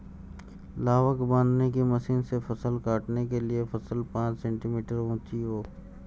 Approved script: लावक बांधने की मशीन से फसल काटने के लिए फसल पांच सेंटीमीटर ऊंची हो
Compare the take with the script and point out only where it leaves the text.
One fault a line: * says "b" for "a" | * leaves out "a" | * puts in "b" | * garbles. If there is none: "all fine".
all fine